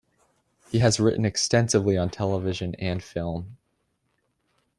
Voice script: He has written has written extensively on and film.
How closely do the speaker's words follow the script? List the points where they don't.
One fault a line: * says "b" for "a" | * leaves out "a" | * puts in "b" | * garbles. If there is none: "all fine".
* leaves out "has written"
* puts in "television"